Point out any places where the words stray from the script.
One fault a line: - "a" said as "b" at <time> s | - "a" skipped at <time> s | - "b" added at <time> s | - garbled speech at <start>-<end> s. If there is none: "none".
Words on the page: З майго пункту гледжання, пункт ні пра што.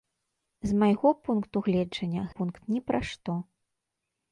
none